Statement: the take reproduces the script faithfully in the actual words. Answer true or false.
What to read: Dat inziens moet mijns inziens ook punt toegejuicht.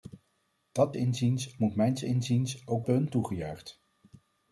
true